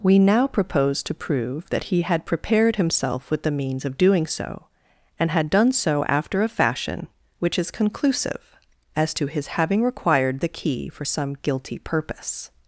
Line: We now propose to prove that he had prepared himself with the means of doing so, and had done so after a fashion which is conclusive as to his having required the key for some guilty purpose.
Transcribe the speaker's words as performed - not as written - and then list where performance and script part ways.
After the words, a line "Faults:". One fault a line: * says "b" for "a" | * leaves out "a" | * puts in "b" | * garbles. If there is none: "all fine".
We now propose to prove that he had prepared himself with the means of doing so, and had done so after a fashion which is conclusive as to his having required the key for some guilty purpose.
Faults:
all fine